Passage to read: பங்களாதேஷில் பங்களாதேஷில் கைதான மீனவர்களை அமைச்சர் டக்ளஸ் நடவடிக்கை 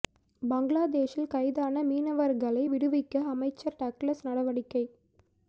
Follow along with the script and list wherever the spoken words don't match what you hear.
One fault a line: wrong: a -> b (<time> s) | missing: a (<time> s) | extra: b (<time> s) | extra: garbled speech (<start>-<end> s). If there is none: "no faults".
missing: பங்களாதேஷில் (1.3 s)
extra: விடுவிக்க (2.7 s)